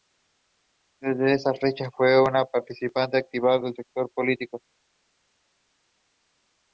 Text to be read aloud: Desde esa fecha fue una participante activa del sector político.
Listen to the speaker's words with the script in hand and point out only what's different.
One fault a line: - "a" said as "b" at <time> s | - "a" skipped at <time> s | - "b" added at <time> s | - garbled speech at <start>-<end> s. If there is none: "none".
none